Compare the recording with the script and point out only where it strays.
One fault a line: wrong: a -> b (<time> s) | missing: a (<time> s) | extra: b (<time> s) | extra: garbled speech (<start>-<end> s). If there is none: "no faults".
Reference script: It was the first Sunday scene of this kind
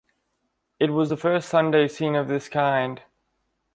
no faults